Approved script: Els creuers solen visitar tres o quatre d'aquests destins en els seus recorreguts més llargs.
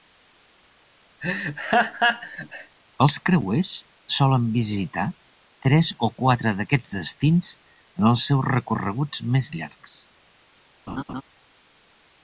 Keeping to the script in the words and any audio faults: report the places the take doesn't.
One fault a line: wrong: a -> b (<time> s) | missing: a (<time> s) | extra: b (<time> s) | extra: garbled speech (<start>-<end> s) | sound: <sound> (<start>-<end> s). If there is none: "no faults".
sound: laugh (1.2-2.8 s)
sound: laugh (10.9-11.2 s)